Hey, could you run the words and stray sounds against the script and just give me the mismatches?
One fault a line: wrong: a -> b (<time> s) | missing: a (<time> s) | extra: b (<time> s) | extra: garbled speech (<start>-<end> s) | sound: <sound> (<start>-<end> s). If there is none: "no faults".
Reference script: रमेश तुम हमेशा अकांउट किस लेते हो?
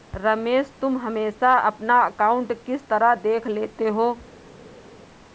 extra: अपना (1.7 s)
extra: तरह देख (2.9 s)